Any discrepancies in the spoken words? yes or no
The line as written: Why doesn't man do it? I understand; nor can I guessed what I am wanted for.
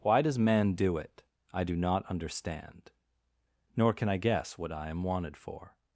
yes